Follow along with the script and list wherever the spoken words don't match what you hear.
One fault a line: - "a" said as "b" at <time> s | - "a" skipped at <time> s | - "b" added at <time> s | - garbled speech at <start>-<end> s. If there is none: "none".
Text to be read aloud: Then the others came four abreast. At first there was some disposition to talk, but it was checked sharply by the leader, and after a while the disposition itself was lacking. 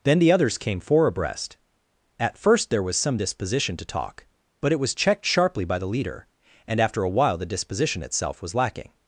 none